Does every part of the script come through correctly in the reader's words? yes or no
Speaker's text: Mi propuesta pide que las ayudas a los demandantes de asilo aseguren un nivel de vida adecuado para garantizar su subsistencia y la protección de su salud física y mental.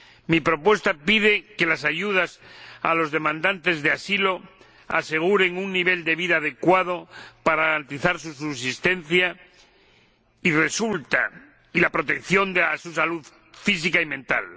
yes